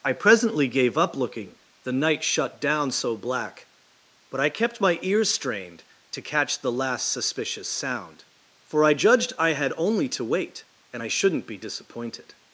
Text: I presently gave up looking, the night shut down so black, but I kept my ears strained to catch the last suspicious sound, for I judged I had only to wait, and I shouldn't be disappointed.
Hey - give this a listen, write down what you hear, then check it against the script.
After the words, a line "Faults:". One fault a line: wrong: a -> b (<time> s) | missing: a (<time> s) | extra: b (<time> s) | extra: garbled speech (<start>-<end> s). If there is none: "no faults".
I presently gave up looking, the night shut down so black, but I kept my ears strained to catch the last suspicious sound, for I judged I had only to wait, and I shouldn't be disappointed.
Faults:
no faults